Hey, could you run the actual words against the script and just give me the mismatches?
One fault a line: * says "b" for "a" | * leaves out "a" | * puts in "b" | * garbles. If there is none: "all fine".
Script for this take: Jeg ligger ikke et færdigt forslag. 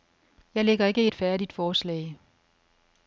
all fine